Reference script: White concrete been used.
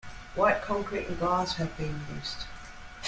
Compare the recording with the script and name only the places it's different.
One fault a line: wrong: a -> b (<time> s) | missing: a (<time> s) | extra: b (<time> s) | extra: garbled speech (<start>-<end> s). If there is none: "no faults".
extra: and glass have (1.1 s)